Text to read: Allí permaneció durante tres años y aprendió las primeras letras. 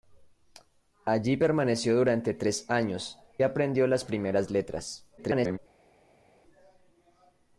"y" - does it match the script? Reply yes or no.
no